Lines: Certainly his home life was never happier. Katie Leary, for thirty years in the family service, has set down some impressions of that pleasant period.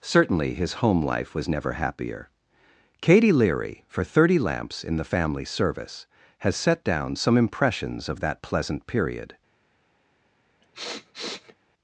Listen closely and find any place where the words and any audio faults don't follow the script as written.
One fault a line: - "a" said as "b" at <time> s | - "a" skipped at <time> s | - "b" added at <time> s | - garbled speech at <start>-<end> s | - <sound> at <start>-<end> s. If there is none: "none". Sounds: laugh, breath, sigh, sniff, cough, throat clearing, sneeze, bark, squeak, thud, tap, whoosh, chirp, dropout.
- "years" said as "lamps" at 4.4 s
- sniff at 10.6-11.6 s